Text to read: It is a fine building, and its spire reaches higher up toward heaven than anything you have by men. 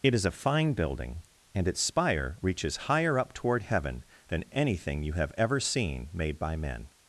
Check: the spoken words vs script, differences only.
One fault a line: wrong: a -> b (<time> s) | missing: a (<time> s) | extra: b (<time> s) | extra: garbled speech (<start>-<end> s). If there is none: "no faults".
extra: ever seen made (5.4 s)